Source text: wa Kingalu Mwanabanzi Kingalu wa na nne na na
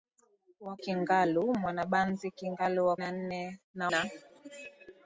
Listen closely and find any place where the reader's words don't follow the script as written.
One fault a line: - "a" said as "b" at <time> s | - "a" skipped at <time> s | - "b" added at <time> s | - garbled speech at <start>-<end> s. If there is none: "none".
none